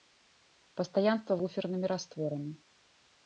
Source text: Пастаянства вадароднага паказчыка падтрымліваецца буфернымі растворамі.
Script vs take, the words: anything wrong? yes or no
yes